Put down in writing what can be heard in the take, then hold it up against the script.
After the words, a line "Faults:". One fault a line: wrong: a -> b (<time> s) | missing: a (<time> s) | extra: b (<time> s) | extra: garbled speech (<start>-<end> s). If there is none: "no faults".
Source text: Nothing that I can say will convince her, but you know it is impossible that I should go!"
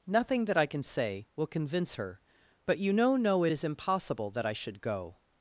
Nothing that I can say will convince her, but you know know it is impossible that I should go!"
Faults:
extra: know (3.2 s)